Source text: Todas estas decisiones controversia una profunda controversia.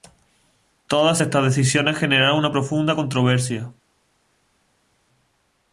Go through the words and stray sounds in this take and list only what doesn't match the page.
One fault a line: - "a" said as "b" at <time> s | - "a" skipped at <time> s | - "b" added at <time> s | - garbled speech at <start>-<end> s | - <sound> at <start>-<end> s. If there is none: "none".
- "controversia" said as "generaron" at 2.0 s